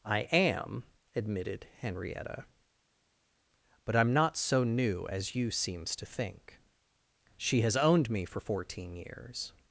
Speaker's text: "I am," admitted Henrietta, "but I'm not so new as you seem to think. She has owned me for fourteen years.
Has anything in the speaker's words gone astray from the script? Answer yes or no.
yes